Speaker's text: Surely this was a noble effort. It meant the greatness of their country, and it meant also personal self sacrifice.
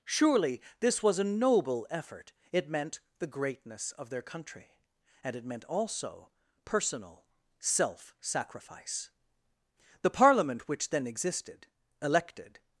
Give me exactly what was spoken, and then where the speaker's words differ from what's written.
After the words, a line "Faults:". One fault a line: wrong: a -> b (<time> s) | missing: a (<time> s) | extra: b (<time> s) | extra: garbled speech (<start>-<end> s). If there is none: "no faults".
Surely this was a noble effort. It meant the greatness of their country, and it meant also personal self sacrifice. The Parliament which then existed, elected
Faults:
extra: The Parliament which then existed elected (10.0 s)